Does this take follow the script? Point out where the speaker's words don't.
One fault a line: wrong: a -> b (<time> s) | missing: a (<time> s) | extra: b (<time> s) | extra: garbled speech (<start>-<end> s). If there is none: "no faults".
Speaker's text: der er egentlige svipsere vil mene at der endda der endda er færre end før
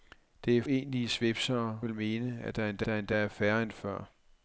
no faults